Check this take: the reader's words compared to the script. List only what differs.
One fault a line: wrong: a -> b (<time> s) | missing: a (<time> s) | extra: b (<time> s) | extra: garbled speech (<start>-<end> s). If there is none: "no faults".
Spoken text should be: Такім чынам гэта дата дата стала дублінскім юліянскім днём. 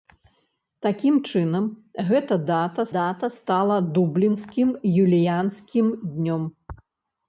no faults